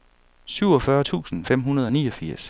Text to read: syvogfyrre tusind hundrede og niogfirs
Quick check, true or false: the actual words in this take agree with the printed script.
false